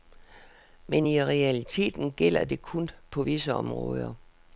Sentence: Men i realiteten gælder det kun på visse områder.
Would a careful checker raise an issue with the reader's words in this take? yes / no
no